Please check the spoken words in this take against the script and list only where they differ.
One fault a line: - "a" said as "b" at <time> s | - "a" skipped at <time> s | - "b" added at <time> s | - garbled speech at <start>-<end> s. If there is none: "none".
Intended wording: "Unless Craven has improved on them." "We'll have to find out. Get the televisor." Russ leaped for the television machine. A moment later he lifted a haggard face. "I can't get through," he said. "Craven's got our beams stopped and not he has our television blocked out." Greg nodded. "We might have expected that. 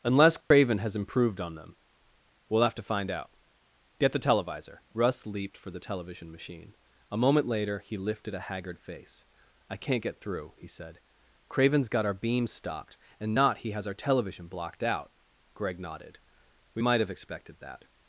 none